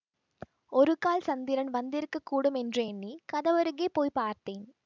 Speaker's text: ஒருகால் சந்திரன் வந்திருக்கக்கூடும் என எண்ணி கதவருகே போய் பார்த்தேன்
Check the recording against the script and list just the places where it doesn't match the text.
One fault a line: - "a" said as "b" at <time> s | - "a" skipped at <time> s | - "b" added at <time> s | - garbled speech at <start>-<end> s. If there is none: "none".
- "என" said as "என்று" at 2.6 s